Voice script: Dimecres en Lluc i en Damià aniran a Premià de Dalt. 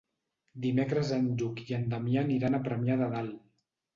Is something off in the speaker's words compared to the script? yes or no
no